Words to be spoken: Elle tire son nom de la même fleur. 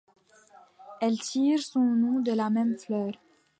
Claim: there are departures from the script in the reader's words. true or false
false